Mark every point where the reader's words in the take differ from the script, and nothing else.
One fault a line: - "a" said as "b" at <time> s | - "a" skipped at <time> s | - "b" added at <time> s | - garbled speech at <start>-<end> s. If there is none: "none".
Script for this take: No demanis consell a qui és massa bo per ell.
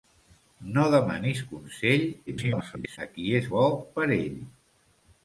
- garbled speech at 2.3-3.0 s
- "massa" skipped at 3.5 s